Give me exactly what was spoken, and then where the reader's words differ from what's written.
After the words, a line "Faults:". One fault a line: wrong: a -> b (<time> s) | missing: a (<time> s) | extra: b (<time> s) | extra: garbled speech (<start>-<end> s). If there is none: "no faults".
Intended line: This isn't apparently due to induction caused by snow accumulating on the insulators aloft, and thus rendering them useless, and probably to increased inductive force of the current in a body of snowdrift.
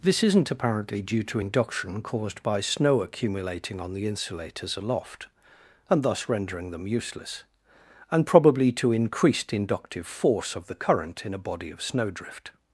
This isn't apparently due to induction caused by snow accumulating on the insulators aloft, and thus rendering them useless, and probably to increased inductive force of the current in a body of snowdrift.
Faults:
no faults